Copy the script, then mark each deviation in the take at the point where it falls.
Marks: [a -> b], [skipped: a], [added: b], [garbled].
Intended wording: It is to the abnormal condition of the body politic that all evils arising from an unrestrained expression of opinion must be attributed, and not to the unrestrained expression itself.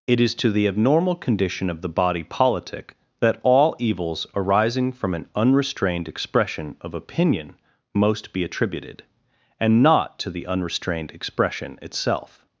It is to the abnormal condition of the body politic that all evils arising from an unrestrained expression of opinion [must -> most] be attributed, and not to the unrestrained expression itself.